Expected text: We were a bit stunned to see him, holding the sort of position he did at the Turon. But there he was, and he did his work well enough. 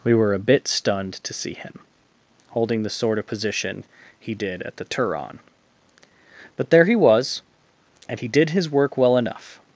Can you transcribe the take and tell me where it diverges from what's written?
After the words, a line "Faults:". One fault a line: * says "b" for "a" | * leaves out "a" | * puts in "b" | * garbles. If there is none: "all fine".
We were a bit stunned to see him, holding the sort of position he did at the Turon. But there he was, and he did his work well enough.
Faults:
all fine